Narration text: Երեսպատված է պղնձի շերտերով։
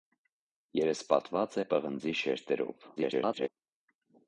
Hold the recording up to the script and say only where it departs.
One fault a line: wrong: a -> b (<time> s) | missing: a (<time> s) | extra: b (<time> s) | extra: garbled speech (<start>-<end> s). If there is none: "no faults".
extra: garbled speech (3.0-3.5 s)